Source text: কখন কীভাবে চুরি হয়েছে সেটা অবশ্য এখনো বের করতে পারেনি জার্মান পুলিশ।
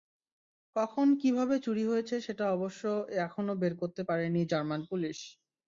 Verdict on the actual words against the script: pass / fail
pass